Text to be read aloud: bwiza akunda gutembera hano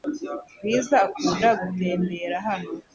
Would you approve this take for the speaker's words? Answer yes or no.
yes